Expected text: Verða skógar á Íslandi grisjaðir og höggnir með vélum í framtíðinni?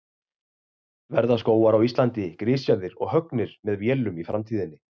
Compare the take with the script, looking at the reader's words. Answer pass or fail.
pass